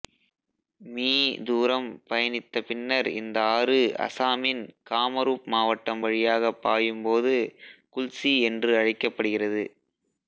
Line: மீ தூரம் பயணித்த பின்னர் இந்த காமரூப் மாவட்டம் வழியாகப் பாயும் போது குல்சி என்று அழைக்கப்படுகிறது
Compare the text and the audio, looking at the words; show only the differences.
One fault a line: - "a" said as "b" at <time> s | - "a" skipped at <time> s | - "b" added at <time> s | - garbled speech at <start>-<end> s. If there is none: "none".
- "ஆறு அசாமின்" added at 3.5 s